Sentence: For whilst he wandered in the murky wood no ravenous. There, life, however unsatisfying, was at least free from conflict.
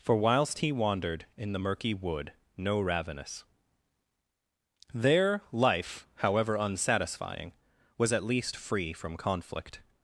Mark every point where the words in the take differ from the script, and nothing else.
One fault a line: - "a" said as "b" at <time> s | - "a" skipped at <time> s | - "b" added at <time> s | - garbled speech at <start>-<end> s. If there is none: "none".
none